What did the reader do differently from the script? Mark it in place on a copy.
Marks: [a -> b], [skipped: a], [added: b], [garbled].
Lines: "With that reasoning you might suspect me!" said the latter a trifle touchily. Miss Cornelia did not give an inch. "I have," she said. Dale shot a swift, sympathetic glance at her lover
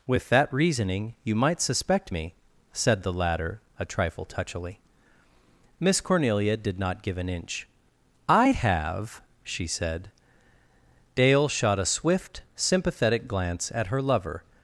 "With that reasoning you might suspect me!" said the latter a trifle touchily. Miss Cornelia did not give an inch. "I have," she said. Dale shot a swift, sympathetic glance at her lover